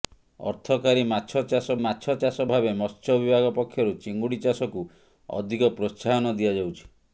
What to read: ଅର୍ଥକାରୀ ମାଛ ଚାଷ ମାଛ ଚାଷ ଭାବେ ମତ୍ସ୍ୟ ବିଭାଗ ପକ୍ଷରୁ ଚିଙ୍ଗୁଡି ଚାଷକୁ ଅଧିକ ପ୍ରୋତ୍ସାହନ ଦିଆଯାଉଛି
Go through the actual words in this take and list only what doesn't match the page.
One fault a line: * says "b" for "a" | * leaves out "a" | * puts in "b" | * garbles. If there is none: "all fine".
all fine